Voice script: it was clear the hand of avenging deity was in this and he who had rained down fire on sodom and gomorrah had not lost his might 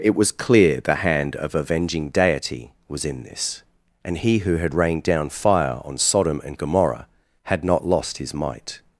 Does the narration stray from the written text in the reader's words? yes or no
no